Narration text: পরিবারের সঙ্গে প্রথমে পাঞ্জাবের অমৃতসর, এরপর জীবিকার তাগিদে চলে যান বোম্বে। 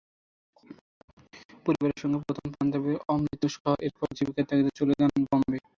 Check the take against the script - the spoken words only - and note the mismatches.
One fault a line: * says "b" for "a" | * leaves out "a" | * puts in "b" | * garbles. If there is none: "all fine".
all fine